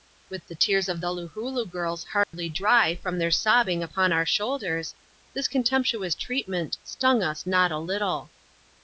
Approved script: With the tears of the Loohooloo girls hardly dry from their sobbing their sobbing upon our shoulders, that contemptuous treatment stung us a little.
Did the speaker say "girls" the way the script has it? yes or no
yes